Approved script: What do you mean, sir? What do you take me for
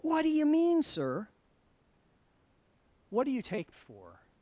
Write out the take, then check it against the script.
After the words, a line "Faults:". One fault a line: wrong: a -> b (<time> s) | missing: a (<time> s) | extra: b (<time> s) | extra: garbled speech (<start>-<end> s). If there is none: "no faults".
What do you mean, sir? What do you take for
Faults:
missing: me (3.7 s)